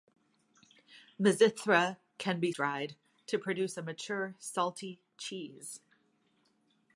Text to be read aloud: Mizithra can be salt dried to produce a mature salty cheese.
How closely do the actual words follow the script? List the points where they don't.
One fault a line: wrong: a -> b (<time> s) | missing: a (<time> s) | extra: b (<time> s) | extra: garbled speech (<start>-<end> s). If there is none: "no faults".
missing: salt (2.5 s)